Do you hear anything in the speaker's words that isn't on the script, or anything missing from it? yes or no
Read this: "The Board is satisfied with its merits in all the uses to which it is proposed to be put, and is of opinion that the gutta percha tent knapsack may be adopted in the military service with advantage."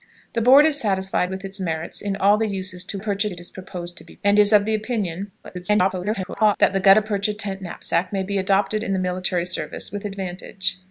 yes